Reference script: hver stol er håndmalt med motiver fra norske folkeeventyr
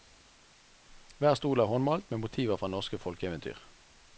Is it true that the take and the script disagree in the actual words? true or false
false